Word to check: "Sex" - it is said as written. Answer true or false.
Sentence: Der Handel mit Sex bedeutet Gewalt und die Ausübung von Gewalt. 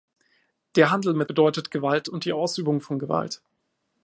false